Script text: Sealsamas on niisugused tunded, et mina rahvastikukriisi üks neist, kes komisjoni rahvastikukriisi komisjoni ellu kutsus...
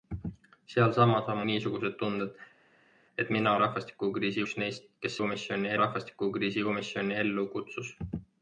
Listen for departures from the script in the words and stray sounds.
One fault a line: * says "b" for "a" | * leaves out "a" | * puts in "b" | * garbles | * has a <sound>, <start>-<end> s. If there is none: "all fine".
all fine